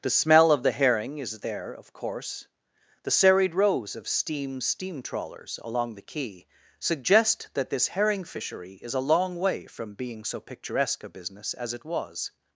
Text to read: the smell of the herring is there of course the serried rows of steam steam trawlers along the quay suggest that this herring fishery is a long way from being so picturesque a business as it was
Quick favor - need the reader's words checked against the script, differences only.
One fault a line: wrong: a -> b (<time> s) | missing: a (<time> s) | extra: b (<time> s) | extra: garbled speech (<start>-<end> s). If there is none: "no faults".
no faults